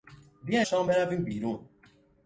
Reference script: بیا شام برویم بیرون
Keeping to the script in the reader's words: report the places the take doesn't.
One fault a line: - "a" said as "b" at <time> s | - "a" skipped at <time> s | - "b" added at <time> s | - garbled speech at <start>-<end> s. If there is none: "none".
none